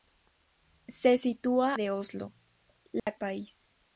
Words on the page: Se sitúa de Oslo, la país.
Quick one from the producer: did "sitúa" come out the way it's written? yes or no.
yes